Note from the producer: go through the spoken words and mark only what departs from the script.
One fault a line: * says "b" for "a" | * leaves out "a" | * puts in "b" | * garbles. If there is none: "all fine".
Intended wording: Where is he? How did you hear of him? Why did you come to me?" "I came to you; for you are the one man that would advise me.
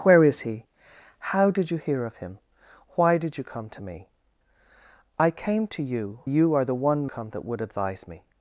* leaves out "for"
* says "come" for "man"